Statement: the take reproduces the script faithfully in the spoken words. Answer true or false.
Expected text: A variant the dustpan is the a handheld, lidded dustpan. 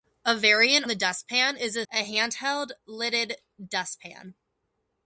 true